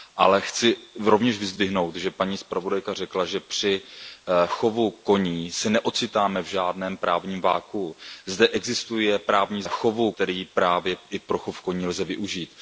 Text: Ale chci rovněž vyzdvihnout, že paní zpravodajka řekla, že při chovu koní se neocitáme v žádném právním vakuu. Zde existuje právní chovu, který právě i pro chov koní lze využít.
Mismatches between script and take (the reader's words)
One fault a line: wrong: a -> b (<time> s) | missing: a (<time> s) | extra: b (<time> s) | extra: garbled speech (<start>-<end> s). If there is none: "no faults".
no faults